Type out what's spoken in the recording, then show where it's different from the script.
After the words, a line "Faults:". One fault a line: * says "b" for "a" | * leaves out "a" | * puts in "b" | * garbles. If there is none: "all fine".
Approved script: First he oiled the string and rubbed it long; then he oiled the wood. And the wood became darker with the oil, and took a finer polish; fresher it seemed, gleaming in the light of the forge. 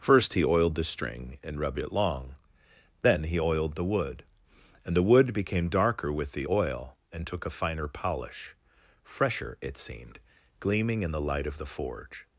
First he oiled the string and rubbed it long; then he oiled the wood. And the wood became darker with the oil, and took a finer polish; fresher it seemed, gleaming in the light of the forge.
Faults:
all fine